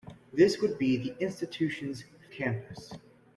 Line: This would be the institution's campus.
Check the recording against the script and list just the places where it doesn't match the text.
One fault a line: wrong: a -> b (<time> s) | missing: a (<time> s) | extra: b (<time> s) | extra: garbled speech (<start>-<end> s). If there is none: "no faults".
no faults